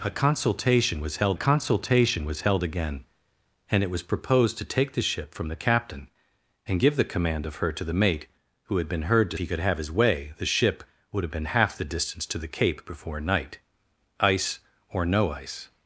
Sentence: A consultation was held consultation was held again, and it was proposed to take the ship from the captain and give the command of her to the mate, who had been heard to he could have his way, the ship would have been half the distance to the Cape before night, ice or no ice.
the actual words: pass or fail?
pass